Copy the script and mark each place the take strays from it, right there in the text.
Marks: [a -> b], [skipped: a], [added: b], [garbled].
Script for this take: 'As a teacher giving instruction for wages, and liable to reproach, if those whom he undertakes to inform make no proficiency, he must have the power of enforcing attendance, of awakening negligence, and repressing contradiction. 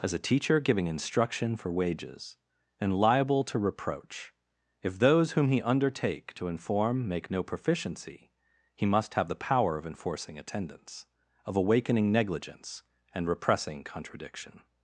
'As a teacher giving instruction for wages, and liable to reproach, if those whom he [undertakes -> undertake] to inform make no proficiency, he must have the power of enforcing attendance, of awakening negligence, and repressing contradiction.